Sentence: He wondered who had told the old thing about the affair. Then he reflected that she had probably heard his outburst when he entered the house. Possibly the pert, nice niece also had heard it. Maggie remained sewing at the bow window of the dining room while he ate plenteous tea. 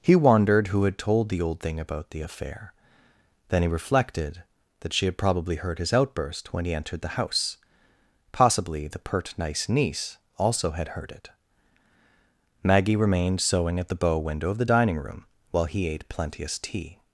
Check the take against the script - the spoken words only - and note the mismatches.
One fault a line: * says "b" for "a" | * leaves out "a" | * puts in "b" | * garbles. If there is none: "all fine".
all fine